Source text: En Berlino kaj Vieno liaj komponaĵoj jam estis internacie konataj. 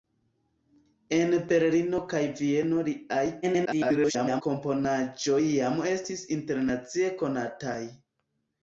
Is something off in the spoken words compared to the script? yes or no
yes